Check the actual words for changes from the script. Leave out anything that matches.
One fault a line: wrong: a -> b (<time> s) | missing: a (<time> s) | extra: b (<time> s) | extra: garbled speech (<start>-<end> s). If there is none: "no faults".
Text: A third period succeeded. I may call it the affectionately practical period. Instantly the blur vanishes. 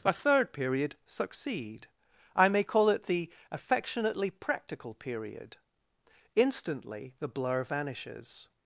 wrong: succeeded -> succeed (1.1 s)